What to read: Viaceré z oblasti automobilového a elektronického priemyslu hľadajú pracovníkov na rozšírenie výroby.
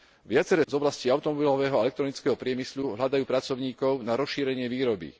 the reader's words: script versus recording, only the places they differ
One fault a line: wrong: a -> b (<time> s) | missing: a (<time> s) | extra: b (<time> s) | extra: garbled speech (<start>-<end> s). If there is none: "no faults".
no faults